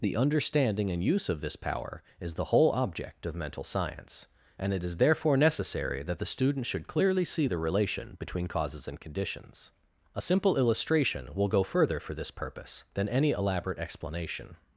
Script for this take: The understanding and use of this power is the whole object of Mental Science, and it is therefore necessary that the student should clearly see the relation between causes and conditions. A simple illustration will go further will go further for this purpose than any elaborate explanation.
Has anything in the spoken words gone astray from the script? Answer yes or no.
yes